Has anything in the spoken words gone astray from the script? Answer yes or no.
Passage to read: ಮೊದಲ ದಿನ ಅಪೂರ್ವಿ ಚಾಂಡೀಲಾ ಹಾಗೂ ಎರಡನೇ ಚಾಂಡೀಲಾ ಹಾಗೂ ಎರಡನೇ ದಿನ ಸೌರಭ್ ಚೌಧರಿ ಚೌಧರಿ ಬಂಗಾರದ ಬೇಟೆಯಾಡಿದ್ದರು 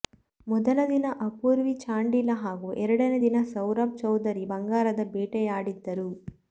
yes